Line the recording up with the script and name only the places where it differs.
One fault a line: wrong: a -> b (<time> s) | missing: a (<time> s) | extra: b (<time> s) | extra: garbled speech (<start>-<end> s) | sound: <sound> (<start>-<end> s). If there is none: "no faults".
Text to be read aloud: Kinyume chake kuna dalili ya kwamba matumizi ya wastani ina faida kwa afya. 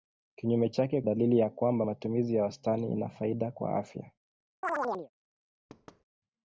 missing: kuna (1.0 s)
sound: chirp (4.6-5.1 s)
sound: thud (5.7-6.0 s)